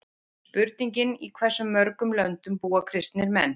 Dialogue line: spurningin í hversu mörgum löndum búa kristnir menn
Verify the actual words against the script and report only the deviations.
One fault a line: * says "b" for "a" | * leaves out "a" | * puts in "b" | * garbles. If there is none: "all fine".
all fine